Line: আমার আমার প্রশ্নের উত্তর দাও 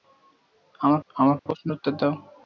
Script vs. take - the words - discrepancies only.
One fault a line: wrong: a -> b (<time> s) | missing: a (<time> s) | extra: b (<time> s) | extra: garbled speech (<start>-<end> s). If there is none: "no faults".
no faults